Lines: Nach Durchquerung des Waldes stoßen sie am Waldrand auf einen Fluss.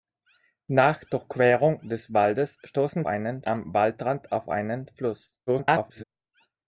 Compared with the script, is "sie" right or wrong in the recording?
wrong